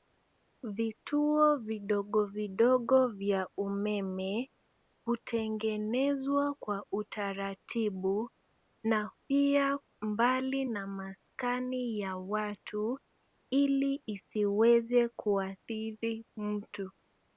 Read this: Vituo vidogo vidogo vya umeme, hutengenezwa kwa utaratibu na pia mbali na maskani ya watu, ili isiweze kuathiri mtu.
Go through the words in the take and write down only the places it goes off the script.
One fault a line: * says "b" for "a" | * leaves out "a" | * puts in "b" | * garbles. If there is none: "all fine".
all fine